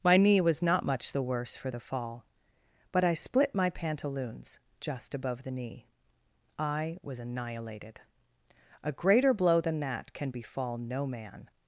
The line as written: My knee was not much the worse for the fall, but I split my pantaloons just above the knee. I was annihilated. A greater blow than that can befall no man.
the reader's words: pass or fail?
pass